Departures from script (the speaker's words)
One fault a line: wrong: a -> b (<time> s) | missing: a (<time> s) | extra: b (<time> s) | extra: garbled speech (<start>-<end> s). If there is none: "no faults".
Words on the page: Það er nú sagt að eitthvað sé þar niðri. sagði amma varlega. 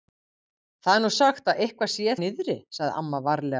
missing: þar (2.1 s)